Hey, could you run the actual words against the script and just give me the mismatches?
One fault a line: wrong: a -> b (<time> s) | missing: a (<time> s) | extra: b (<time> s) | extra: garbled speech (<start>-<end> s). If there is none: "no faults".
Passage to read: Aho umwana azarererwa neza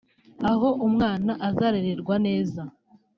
no faults